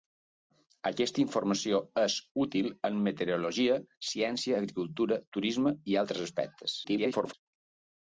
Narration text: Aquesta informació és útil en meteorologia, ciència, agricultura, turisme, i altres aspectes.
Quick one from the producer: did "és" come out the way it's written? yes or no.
yes